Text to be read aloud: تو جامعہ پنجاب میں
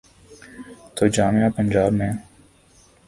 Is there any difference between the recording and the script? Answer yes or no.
no